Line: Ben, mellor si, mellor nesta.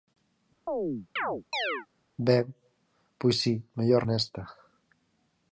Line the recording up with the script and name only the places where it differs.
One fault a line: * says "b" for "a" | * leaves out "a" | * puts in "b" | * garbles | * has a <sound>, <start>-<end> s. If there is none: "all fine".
* has a chirp, 0.7-1.9 s
* says "pois" for "mellor"